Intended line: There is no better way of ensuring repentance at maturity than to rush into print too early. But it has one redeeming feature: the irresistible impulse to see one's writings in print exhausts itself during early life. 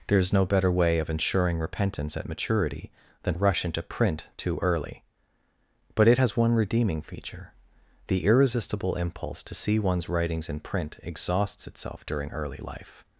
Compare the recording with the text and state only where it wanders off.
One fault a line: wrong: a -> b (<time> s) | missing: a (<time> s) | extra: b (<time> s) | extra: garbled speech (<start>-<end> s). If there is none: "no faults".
missing: to (3.3 s)